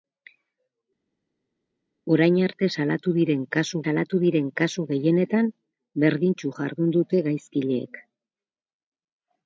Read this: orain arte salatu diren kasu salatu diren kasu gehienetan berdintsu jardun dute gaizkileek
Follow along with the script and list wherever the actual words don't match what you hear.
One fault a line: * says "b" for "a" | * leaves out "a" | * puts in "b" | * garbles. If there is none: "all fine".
all fine